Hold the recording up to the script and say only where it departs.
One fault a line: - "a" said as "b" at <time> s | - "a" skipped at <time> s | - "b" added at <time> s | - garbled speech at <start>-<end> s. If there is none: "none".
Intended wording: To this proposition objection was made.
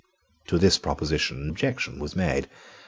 none